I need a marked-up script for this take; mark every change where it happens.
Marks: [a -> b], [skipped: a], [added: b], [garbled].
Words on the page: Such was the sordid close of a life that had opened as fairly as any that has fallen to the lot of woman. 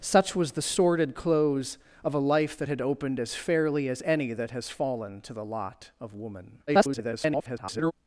Such was the sordid close of a life that had opened as fairly as any that has fallen to the lot of woman. [garbled]